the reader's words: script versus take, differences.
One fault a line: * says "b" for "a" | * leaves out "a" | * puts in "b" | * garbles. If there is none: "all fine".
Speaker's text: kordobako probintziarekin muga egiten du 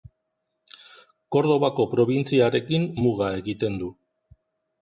all fine